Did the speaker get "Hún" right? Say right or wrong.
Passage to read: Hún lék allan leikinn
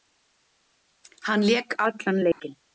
wrong